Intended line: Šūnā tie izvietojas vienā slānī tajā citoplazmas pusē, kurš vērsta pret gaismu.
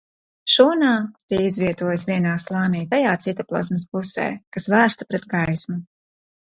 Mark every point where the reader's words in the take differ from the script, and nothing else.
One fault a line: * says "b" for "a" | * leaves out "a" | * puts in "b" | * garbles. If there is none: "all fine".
* says "kas" for "kurš"